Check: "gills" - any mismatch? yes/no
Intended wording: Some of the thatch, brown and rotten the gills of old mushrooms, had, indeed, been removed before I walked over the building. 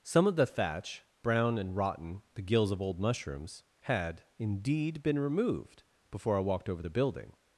no